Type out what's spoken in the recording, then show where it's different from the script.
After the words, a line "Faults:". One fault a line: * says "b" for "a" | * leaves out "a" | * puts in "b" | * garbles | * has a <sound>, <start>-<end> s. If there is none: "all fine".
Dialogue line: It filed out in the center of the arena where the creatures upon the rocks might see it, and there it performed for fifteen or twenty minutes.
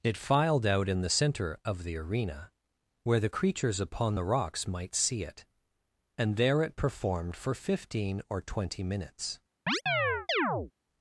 It filed out in the center of the arena where the creatures upon the rocks might see it, and there it performed for fifteen or twenty minutes.
Faults:
* has a chirp, 9.7-10.7 s